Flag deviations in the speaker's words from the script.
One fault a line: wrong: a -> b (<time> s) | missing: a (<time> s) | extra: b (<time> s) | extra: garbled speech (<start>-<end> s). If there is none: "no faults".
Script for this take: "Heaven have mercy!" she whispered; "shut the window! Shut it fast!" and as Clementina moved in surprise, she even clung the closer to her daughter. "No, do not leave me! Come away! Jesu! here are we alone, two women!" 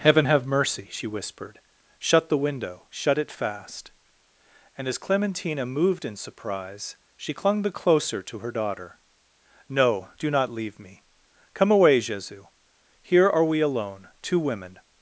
missing: even (7.3 s)